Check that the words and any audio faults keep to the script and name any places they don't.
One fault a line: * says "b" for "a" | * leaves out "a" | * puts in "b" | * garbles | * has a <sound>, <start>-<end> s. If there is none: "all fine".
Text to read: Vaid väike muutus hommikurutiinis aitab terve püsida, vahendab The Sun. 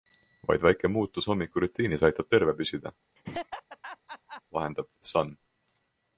* has a laugh, 3.2-4.4 s